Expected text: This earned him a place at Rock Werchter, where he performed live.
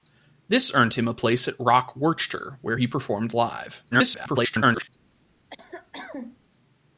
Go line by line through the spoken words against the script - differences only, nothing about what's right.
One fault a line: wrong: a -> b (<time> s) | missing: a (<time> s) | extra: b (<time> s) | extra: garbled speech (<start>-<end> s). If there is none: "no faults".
extra: garbled speech (3.9-4.9 s)